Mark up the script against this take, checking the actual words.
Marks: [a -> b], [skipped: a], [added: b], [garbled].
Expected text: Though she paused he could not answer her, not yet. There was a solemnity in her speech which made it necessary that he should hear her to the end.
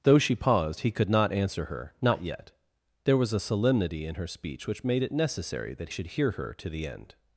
Though she paused he could not answer her, not yet. There was a solemnity in her speech which made it necessary that [skipped: he] should hear her to the end.